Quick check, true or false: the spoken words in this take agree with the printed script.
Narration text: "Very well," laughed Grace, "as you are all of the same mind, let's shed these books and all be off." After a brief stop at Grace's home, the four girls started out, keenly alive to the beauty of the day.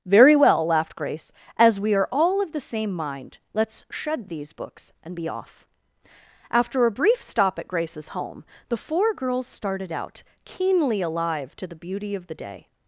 false